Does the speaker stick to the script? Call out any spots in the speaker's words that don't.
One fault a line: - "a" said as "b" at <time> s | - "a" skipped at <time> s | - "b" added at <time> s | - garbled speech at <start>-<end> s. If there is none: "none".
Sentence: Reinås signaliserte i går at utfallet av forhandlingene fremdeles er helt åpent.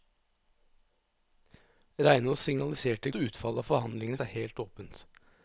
- "går" skipped at 3.1 s
- "fremdeles" skipped at 4.2 s